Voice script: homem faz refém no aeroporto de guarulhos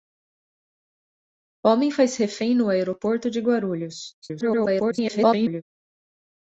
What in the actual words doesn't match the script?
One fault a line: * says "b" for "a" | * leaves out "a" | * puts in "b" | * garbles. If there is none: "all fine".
* garbles